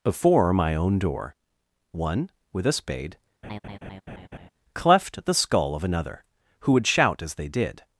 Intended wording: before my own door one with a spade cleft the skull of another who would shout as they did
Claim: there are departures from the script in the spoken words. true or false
false